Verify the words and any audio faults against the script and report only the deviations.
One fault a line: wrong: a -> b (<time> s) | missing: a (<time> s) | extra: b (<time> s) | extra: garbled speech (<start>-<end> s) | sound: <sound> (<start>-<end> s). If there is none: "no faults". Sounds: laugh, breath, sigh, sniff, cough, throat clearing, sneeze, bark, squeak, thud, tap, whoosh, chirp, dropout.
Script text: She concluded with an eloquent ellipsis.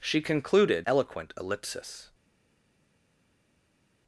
missing: with an (0.9 s)